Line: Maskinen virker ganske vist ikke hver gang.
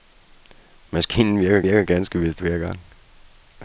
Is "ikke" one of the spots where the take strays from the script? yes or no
yes